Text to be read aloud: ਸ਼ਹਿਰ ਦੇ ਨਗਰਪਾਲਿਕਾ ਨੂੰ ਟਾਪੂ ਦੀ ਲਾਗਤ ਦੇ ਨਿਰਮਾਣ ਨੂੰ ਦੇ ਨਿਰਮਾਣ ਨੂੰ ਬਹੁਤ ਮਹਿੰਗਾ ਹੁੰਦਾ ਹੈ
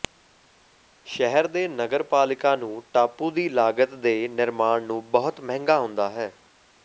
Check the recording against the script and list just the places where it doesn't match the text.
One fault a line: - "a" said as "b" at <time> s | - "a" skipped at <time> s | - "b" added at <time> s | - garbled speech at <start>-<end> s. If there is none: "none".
- "ਦੇ ਨਿਰਮਾਣ ਨੂੰ" skipped at 5.0 s